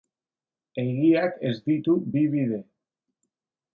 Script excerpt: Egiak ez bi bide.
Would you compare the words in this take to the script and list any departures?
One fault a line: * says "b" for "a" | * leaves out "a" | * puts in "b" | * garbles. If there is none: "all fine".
* puts in "ditu"